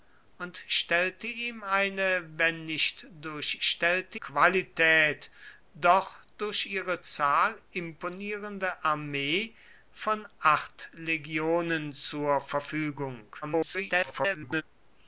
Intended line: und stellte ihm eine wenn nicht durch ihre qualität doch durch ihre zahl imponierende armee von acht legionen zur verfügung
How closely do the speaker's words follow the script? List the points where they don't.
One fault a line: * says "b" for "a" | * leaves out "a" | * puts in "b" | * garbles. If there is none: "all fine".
* says "stellte" for "ihre"
* garbles